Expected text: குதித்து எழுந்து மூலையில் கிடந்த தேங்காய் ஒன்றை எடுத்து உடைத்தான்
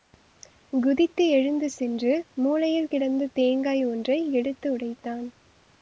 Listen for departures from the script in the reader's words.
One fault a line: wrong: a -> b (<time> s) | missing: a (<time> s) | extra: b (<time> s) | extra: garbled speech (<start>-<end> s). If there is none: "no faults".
extra: சென்று (1.7 s)